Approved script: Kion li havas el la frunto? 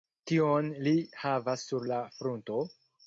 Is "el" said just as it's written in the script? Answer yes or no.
no